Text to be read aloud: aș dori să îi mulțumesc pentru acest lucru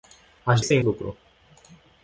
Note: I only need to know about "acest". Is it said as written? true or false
false